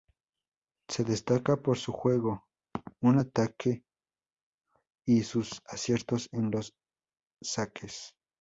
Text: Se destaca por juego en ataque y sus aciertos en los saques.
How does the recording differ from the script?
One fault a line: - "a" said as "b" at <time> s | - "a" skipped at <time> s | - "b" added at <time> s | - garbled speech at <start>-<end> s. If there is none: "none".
- "su" added at 1.8 s